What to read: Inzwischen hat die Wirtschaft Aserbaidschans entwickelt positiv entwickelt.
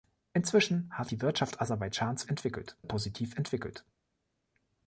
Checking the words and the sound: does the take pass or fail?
pass